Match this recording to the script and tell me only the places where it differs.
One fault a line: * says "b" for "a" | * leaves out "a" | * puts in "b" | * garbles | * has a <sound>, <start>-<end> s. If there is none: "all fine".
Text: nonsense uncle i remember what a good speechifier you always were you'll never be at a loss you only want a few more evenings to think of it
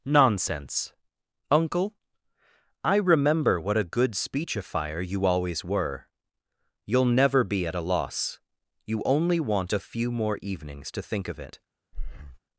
* has a breath, 11.9-12.4 s